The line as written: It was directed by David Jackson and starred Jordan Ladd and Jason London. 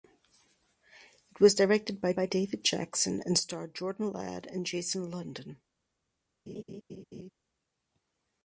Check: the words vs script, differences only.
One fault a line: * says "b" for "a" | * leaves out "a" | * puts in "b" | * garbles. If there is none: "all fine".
* puts in "by"